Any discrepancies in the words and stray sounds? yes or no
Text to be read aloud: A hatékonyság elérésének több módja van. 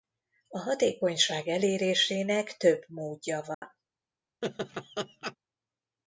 yes